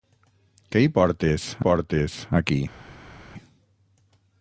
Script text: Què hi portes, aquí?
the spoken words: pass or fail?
fail